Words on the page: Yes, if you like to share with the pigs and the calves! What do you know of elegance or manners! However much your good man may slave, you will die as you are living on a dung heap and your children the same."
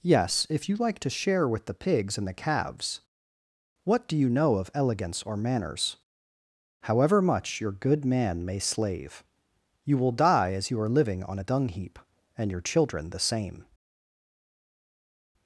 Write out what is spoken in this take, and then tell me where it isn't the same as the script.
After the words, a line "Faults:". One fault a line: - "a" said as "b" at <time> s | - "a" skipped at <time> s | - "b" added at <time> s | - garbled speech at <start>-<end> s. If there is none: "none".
Yes, if you like to share with the pigs and the calves! What do you know of elegance or manners! However much your good man may slave, you will die as you are living on a dung heap and your children the same."
Faults:
none